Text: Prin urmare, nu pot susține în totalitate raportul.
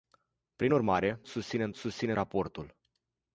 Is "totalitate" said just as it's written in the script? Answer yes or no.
no